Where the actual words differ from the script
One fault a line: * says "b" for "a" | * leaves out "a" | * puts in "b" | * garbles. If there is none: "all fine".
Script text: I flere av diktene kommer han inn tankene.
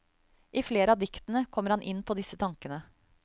* puts in "på disse"